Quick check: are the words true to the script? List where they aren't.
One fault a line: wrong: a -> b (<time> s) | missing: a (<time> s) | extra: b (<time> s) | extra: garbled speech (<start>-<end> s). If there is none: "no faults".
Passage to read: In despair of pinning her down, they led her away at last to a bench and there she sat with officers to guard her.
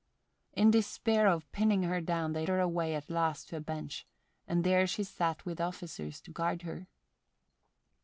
missing: led (2.5 s)